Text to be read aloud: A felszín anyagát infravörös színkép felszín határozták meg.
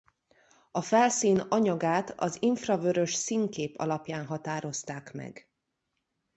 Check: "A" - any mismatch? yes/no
no